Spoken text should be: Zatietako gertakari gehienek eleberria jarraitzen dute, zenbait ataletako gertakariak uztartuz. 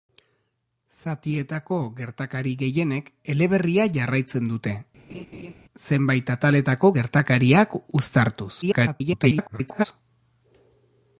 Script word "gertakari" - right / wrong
right